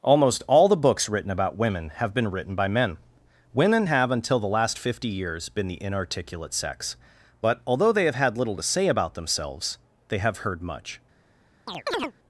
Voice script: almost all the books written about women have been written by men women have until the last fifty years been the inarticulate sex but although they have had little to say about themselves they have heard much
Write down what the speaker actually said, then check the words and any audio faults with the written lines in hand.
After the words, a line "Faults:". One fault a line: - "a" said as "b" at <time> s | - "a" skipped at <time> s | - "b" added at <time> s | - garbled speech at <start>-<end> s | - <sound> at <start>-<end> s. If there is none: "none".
almost all the books written about women have been written by men women have until the last fifty years been the inarticulate sex but although they have had little to say about themselves they have heard much
Faults:
- chirp at 11.7-12.1 s